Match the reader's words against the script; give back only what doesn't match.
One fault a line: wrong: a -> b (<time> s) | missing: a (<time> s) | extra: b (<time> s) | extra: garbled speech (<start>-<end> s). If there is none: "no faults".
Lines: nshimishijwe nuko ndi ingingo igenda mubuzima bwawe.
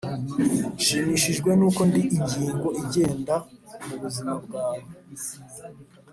no faults